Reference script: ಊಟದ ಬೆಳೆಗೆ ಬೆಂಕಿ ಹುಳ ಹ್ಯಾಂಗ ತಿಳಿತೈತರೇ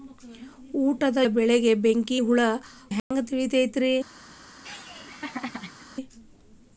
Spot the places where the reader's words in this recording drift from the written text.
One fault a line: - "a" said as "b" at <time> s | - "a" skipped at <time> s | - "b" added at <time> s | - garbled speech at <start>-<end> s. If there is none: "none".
none